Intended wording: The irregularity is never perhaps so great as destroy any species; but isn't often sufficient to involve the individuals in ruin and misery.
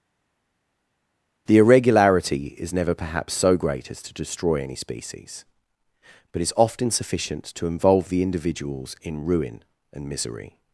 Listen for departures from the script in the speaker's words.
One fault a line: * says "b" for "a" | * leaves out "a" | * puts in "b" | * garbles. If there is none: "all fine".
* puts in "to"
* says "is" for "isn't"